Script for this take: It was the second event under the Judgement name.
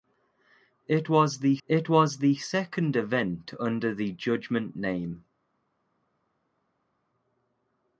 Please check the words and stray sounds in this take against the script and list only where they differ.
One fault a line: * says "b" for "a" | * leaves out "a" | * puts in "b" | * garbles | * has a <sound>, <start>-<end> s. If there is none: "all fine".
* puts in "it was the"